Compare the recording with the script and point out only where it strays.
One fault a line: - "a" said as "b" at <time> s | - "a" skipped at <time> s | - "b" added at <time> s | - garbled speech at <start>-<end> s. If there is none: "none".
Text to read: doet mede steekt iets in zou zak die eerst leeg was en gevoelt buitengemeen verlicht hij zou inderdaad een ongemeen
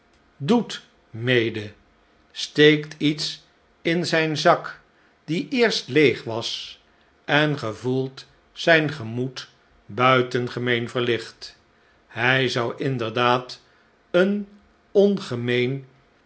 - "zou" said as "zijn" at 4.0 s
- "zijn gemoed" added at 8.5 s